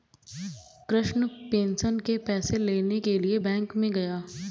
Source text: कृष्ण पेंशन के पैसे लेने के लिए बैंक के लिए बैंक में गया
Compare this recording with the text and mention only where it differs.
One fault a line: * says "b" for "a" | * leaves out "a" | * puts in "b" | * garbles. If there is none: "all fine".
* leaves out "के लिए बैंक"